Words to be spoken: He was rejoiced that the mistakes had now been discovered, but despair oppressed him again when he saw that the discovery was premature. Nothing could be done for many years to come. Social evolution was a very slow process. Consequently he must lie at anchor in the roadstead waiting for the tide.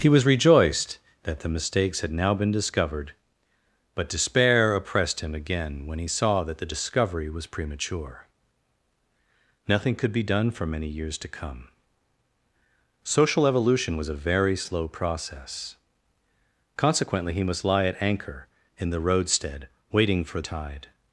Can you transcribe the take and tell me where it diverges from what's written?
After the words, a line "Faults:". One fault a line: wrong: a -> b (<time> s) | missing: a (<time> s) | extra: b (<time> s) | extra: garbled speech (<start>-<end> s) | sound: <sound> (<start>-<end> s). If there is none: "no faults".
He was rejoiced that the mistakes had now been discovered, but despair oppressed him again when he saw that the discovery was premature. Nothing could be done for many years to come. Social evolution was a very slow process. Consequently he must lie at anchor in the roadstead waiting for tide.
Faults:
missing: the (20.4 s)